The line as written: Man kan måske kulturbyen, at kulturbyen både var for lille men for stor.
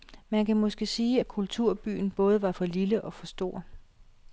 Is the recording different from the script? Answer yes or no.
yes